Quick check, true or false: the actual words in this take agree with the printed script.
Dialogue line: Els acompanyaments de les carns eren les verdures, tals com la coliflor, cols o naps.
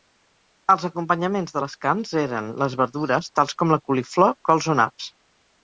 true